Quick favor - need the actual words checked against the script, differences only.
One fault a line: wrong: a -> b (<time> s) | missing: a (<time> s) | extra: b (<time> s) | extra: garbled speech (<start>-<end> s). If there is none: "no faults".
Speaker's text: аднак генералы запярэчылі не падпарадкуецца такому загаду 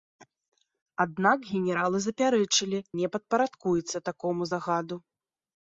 no faults